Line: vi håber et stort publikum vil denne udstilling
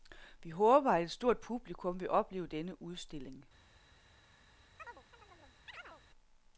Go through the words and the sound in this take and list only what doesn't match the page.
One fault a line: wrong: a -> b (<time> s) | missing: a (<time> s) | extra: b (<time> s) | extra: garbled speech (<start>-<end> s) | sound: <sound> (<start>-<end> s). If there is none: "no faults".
extra: at (0.9 s)
extra: opleve (2.1 s)
sound: chirp (4.8-6.0 s)